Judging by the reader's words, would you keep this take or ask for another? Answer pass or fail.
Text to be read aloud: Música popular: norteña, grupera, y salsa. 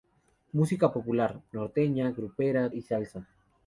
pass